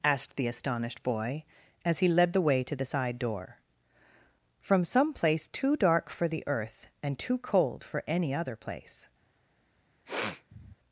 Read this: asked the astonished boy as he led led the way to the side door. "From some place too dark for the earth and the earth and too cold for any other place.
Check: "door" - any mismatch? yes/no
no